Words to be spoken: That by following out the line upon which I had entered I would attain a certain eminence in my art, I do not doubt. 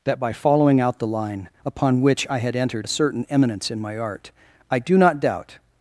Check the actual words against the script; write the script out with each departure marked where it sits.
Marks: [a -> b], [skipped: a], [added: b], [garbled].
That by following out the line upon which I had entered [skipped: I would attain] a certain eminence in my art, I do not doubt.